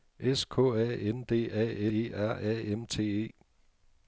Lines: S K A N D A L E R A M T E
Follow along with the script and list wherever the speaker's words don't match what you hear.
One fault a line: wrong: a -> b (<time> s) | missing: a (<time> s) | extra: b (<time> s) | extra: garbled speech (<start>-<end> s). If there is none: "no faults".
missing: L (1.9 s)